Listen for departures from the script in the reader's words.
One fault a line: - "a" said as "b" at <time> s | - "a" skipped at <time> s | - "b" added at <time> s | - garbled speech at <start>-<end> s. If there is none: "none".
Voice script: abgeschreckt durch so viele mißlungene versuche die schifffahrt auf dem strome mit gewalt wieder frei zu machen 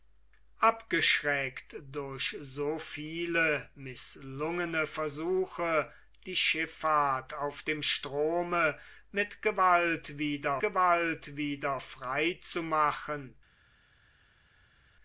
- "gewalt wieder" added at 10.6 s